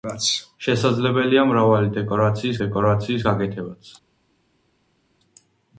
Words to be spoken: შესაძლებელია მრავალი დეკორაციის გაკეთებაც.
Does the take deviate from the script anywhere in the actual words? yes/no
yes